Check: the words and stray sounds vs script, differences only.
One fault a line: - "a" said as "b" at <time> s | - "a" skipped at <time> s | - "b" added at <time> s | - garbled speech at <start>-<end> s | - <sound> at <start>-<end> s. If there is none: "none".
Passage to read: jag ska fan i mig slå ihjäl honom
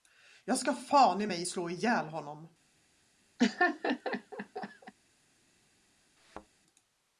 - laugh at 3.4-4.9 s
- thud at 6.2-6.5 s